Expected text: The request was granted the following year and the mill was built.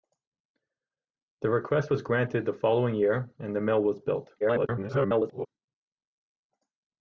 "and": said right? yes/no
yes